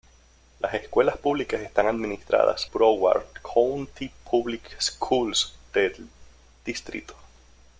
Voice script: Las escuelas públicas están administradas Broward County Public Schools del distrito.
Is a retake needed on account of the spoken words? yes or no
no